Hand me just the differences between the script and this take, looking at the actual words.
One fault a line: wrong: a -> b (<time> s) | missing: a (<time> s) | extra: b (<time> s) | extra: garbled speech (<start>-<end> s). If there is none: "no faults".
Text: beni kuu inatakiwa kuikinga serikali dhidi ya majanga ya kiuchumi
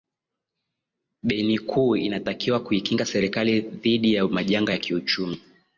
no faults